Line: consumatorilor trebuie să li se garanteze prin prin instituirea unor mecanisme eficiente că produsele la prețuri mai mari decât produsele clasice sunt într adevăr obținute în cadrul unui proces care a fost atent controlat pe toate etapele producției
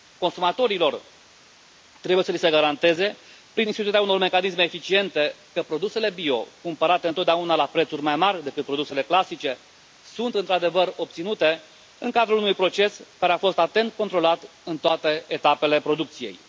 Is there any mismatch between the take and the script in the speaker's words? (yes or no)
yes